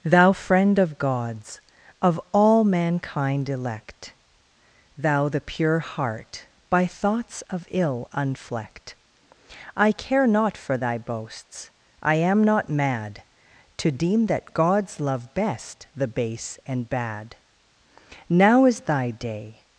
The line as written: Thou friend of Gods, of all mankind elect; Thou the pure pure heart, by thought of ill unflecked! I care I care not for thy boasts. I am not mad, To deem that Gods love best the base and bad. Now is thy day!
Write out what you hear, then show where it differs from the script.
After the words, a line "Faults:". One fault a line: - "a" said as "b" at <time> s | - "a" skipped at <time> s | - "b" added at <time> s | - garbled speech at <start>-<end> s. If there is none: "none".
Thou friend of Gods, of all mankind elect; Thou the pure heart, by thoughts of ill unflecked! I care not for thy boasts. I am not mad, To deem that Gods love best the base and bad. Now is thy day!
Faults:
- "pure" skipped at 5.8 s
- "thought" said as "thoughts" at 6.9 s
- "I care" skipped at 10.3 s